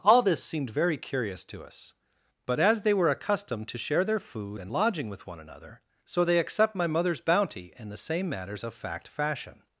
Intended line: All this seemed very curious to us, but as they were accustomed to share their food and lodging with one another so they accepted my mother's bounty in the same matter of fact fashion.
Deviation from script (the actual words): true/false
true